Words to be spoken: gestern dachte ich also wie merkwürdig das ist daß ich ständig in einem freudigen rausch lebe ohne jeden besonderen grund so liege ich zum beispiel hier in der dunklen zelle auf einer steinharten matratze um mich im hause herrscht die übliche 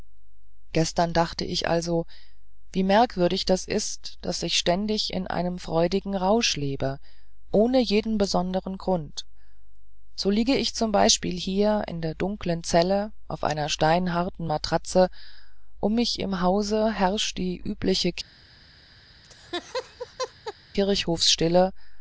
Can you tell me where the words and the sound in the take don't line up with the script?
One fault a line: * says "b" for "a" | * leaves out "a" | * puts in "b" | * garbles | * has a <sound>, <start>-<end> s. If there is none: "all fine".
* has a laugh, 19.2-20.5 s